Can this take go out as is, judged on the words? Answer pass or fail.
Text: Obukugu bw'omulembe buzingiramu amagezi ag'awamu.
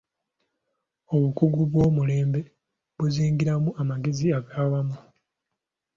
pass